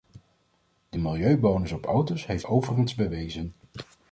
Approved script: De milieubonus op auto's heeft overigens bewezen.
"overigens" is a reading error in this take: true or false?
false